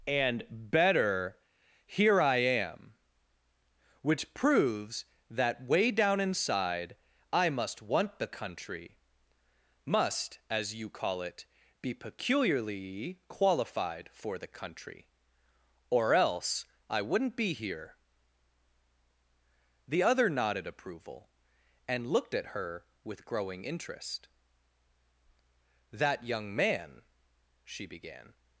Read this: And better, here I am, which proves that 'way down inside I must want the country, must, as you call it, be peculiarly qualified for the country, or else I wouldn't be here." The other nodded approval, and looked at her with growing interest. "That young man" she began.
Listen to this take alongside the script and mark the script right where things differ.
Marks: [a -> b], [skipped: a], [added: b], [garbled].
And better, here I am, which proves that 'way down inside I must want the country, must, as you call it, be peculiarly qualified for the country, or else I wouldn't be here." The other nodded approval, and looked at her with growing interest. "That young man" she began.